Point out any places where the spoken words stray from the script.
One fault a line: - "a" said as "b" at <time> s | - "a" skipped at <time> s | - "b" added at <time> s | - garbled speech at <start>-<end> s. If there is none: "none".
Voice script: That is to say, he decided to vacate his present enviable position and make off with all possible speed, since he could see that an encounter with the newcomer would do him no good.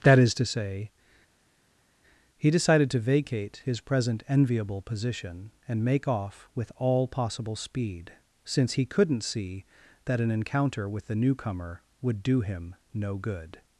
- "could" said as "couldn't" at 8.9 s